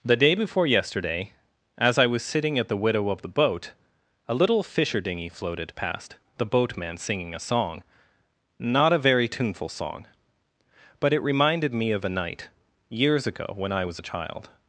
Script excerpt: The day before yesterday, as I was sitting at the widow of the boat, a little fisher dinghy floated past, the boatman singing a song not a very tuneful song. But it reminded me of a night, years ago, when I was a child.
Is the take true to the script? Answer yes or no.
yes